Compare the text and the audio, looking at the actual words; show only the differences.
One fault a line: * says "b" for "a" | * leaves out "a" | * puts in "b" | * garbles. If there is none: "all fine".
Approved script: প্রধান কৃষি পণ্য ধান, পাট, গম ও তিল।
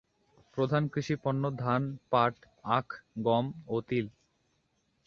* puts in "আখ"